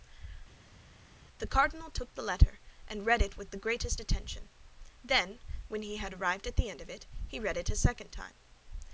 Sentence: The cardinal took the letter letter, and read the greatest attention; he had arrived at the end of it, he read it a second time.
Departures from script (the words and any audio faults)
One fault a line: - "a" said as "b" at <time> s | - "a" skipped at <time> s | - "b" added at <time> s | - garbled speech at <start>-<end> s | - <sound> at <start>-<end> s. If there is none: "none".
- "letter" skipped at 2.6 s
- "it with" added at 3.2 s
- "then when" added at 5.0 s